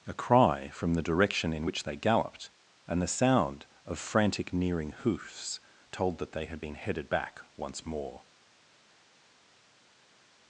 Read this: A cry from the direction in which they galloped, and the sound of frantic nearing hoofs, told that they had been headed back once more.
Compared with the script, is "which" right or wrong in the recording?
right